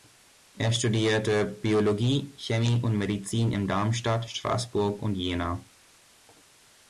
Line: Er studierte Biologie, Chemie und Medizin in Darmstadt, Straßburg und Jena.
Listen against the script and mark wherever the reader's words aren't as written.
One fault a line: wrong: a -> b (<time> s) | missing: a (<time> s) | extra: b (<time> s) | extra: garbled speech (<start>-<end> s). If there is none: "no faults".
no faults